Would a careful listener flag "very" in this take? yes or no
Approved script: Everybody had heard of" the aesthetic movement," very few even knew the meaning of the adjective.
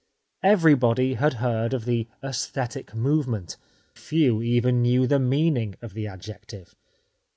yes